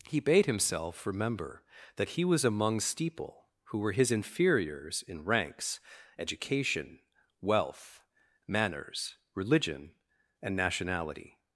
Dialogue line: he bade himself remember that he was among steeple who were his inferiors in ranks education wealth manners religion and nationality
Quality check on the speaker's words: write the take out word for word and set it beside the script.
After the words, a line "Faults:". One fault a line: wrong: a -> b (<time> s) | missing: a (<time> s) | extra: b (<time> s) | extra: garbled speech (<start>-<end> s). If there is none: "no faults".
he bade himself remember that he was among steeple who were his inferiors in ranks education wealth manners religion and nationality
Faults:
no faults